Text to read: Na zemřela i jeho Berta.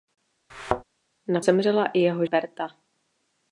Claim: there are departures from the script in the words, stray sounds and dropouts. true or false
true